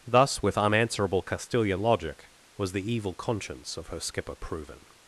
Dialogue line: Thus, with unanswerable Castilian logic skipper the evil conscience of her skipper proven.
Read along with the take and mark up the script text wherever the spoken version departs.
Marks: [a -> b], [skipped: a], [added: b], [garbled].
Thus, with unanswerable Castilian logic [skipper -> was] the evil conscience of her skipper proven.